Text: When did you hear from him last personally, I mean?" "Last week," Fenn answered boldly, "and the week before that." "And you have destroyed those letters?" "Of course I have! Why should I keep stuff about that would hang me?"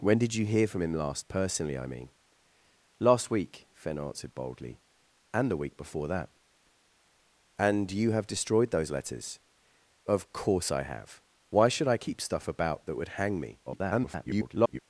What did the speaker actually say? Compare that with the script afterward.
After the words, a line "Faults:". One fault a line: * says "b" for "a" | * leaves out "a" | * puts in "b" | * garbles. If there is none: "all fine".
When did you hear from him last personally, I mean?" "Last week," Fenn answered boldly, "and the week before that." "And you have destroyed those letters?" "Of course I have! Why should I keep stuff about that would hang me?" [garbled]
Faults:
* garbles